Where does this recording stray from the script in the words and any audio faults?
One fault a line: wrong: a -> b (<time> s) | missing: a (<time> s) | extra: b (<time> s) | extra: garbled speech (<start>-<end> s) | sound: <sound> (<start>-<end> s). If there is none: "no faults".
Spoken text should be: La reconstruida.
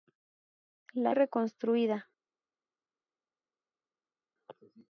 no faults